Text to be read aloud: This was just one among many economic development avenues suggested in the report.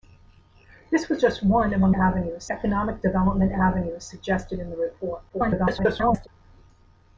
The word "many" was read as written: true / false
false